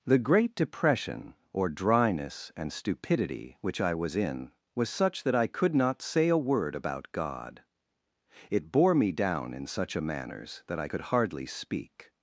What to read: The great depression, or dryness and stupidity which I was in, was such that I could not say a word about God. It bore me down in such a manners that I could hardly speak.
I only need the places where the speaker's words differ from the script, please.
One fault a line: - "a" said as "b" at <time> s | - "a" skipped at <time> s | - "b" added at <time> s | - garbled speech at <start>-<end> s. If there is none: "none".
none